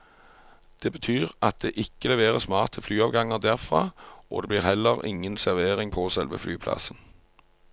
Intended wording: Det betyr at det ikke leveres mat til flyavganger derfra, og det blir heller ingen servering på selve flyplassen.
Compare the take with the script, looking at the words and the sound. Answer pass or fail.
pass